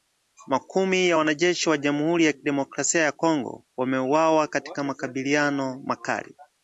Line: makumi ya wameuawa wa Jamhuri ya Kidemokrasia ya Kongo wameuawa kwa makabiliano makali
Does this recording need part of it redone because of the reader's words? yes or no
yes